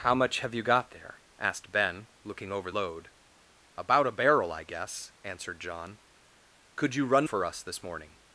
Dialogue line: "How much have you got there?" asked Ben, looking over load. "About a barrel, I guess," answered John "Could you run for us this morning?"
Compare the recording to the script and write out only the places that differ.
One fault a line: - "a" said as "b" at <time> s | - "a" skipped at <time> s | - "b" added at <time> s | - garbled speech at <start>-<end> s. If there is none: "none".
none